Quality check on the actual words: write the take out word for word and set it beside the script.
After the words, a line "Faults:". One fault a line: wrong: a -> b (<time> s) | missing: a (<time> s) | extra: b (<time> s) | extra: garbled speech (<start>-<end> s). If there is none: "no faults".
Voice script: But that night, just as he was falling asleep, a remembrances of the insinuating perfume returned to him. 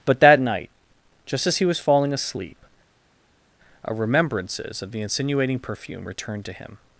But that night, just as he was falling asleep, a remembrances of the insinuating perfume returned to him.
Faults:
no faults